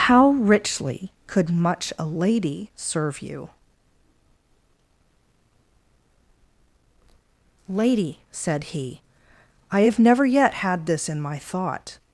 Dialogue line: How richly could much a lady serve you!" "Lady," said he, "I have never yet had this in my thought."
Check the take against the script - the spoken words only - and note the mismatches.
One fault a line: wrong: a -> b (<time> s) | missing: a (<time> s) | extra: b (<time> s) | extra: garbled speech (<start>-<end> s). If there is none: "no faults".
no faults